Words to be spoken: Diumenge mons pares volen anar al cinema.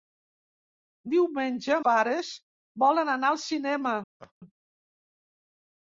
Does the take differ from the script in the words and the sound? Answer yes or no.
yes